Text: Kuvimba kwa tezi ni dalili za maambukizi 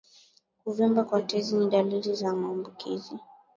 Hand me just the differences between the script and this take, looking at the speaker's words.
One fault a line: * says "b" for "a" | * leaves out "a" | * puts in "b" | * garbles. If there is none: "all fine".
all fine